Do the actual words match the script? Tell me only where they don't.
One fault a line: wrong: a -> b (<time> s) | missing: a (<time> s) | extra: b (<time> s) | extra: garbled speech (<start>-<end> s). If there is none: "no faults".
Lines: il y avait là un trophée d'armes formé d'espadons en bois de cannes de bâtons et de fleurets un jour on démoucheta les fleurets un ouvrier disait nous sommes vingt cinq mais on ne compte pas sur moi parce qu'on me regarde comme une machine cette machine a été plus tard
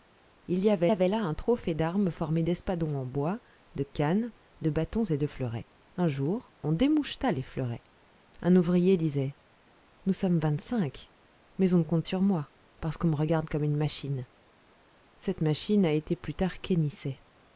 extra: avait (0.9 s)
missing: pas (12.0 s)